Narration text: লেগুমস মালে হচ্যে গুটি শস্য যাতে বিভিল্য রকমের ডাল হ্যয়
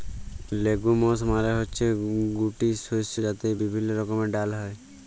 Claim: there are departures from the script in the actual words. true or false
false